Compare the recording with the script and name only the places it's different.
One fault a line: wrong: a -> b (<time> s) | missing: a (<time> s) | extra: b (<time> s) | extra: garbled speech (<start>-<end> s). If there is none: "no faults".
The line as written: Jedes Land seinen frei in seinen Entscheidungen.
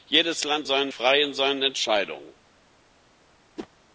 no faults